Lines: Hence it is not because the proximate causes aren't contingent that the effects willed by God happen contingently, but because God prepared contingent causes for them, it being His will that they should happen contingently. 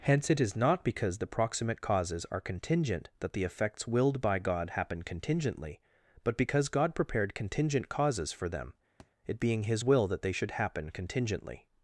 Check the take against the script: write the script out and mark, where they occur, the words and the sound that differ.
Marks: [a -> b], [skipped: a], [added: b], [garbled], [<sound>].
Hence it is not because the proximate causes [aren't -> are] contingent that the effects willed by God happen contingently, but because God prepared contingent causes for them, [thud] it being His will that they should happen contingently.